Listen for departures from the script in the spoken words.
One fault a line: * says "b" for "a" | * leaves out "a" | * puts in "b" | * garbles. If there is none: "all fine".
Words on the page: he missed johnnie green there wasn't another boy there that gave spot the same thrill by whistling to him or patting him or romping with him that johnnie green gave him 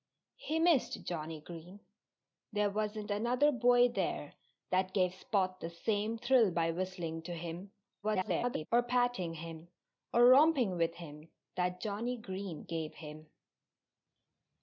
* garbles